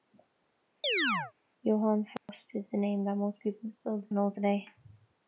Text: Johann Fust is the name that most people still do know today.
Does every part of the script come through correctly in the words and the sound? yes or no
no